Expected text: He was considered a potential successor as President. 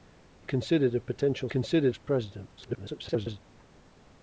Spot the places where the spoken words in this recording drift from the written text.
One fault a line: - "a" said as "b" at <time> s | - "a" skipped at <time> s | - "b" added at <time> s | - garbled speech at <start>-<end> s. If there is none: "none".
- "was" skipped at 0.5 s
- "successor" said as "considered" at 1.5 s
- garbled speech at 2.6-3.4 s